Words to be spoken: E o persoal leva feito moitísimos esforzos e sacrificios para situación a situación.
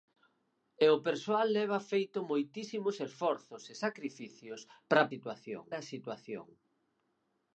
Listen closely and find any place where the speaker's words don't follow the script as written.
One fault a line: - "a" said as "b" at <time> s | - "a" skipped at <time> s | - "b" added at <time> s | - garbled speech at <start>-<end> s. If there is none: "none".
none